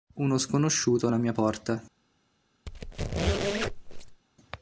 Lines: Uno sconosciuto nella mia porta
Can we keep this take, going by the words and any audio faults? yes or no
no